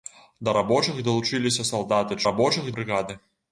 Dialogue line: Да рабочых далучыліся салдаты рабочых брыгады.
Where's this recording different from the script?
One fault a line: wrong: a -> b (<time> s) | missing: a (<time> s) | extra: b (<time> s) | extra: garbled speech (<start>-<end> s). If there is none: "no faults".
no faults